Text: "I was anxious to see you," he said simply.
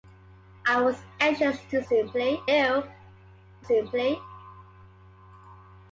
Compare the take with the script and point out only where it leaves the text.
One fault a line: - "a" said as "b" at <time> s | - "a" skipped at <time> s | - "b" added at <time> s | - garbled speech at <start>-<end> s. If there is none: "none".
- "see" said as "simply" at 1.8 s
- "said" skipped at 3.6 s